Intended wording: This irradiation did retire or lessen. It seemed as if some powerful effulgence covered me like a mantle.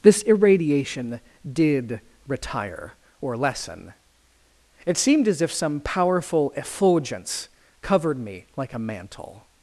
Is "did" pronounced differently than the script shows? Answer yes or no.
no